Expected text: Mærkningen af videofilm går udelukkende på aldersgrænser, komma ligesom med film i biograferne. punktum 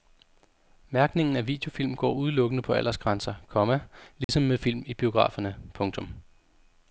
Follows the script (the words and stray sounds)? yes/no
no